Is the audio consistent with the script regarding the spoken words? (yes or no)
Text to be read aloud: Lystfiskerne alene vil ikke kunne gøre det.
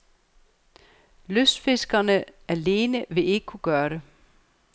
yes